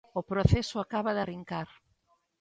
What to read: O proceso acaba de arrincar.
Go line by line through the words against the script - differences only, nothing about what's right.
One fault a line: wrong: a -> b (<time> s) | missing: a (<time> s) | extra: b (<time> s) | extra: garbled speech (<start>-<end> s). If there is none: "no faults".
no faults